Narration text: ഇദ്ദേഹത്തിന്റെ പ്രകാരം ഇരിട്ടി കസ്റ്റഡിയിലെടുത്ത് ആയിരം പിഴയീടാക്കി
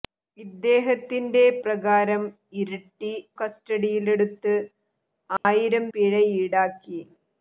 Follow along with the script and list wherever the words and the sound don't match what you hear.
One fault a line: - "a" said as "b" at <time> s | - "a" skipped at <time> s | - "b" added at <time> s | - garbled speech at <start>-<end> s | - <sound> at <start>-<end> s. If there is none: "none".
- dropout at 5.4-5.4 s